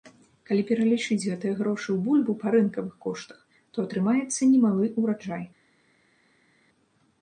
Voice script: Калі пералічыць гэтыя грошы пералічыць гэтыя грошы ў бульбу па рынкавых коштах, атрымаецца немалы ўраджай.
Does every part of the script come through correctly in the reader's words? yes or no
no